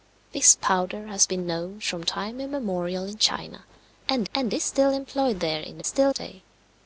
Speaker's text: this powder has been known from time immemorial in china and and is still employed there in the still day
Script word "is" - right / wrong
right